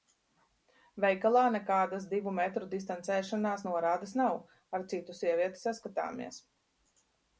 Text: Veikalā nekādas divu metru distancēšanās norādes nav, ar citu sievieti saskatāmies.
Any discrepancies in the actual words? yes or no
no